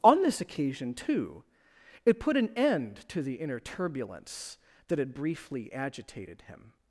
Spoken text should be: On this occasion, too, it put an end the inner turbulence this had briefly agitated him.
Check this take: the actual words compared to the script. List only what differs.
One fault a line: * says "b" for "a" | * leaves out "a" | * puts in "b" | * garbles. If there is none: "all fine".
* puts in "to"
* says "that" for "this"